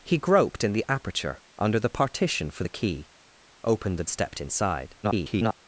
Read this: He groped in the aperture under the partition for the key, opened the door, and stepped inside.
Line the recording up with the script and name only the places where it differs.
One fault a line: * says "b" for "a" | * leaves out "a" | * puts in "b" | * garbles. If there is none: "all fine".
* leaves out "door and"
* garbles